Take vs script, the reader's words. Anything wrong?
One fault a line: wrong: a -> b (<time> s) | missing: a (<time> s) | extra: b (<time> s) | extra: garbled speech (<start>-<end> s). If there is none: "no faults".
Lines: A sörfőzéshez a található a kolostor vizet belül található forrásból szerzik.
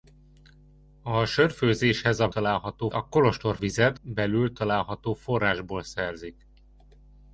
no faults